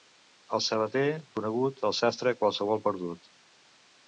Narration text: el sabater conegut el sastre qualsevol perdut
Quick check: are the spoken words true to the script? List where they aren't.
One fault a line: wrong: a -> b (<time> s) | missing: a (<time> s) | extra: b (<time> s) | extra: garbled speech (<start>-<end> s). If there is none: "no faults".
no faults